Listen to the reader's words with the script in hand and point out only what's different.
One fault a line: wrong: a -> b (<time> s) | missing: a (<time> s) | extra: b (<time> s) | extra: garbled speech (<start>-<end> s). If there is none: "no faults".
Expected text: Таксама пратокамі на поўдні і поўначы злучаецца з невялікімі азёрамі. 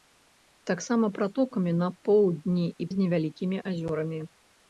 missing: поўначы злучаецца (2.9 s)